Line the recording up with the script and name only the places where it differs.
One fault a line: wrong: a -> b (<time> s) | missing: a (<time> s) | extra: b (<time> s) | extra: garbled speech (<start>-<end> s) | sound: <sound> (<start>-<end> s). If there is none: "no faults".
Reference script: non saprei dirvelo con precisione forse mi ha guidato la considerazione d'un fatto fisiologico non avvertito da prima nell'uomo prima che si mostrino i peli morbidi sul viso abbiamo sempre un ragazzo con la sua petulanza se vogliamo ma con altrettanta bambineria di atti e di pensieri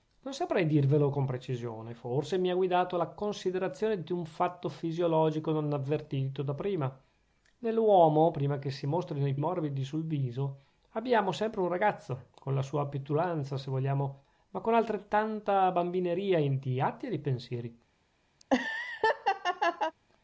missing: peli (9.3 s)
sound: laugh (18.4-19.9 s)